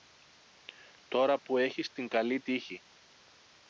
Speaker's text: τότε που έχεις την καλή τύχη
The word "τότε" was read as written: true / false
false